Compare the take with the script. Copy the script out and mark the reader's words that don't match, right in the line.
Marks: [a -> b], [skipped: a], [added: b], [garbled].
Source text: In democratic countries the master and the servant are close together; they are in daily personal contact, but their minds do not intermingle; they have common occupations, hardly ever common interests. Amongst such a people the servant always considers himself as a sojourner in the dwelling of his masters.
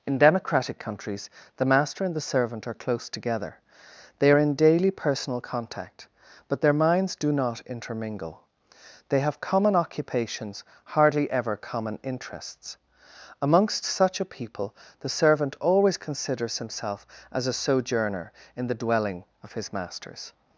In democratic countries the master and the servant are close together; they are in daily personal contact, but their minds do not intermingle; they have common occupations, hardly ever common interests. Amongst such a people the servant always considers himself as a sojourner in the dwelling of his masters.